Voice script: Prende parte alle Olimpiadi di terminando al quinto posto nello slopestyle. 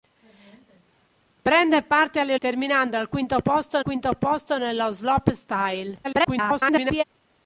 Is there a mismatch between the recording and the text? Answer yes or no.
yes